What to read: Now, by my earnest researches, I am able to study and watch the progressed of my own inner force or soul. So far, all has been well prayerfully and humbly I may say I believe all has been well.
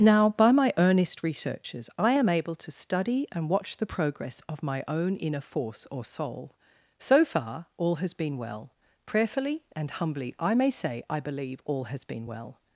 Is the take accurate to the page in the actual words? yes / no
no